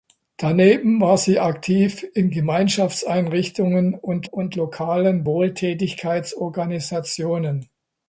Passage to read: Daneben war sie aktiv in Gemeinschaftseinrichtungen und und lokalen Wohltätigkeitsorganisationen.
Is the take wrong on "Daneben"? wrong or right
right